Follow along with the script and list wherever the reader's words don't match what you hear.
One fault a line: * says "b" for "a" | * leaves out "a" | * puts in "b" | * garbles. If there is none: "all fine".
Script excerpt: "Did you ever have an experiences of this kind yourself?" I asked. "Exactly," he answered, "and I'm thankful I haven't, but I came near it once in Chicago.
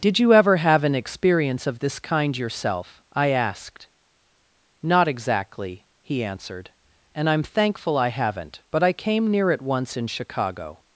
* says "experience" for "experiences"
* puts in "Not"